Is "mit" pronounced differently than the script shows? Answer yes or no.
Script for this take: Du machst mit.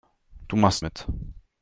no